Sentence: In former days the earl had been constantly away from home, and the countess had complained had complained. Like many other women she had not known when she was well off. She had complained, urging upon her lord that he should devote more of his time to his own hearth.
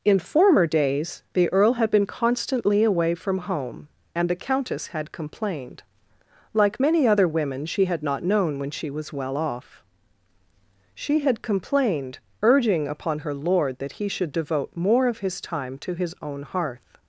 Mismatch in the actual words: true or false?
true